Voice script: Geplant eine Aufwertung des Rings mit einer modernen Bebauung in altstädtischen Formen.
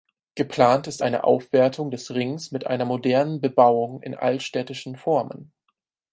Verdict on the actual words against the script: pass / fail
fail